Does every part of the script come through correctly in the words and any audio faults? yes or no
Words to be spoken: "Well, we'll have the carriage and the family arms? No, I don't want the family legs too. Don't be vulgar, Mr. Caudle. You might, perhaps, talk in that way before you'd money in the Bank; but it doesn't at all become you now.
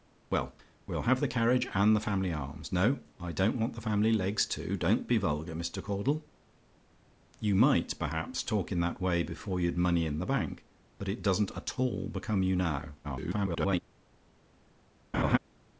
no